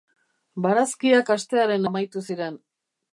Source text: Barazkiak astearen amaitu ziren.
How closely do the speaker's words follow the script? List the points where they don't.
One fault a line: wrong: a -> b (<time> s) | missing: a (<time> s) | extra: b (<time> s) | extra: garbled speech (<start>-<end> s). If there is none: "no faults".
no faults